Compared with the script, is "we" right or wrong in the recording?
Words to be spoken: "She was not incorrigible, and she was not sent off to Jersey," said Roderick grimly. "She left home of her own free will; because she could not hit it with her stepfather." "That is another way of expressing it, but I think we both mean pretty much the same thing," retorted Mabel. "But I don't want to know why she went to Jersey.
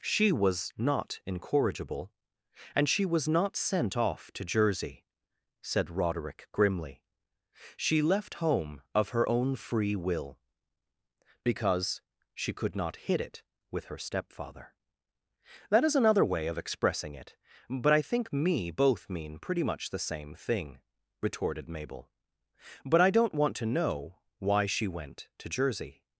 wrong